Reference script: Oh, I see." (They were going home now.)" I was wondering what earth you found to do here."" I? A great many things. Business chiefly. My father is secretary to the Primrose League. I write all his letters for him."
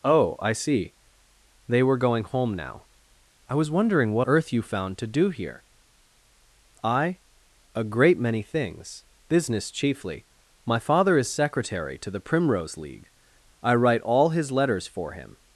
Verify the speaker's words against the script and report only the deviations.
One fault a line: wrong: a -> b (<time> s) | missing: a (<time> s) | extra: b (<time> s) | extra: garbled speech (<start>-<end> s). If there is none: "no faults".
no faults